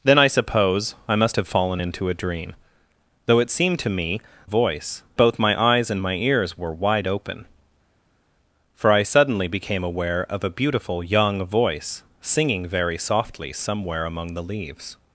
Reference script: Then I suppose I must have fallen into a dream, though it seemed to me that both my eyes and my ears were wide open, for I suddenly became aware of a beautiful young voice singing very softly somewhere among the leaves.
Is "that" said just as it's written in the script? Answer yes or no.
no